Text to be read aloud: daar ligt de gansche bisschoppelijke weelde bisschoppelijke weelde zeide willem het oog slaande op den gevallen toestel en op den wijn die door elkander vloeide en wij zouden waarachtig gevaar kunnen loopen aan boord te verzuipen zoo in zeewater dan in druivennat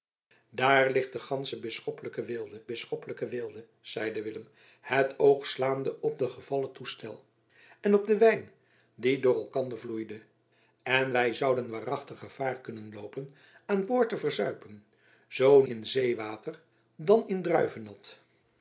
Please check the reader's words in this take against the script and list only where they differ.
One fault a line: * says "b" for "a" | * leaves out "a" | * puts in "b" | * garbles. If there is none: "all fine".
all fine